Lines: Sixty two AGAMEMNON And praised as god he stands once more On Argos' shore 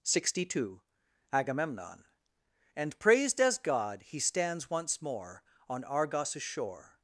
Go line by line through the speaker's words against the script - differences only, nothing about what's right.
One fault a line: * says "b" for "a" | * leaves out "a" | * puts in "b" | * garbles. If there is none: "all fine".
all fine